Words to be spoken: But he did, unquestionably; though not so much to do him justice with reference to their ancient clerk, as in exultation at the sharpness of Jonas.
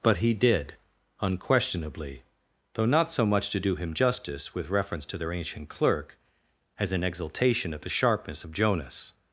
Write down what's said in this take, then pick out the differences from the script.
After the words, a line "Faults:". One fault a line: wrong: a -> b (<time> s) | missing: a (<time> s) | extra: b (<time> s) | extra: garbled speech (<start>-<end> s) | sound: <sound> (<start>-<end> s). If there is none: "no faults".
But he did, unquestionably; though not so much to do him justice with reference to their ancient clerk, as in exultation at the sharpness of Jonas.
Faults:
no faults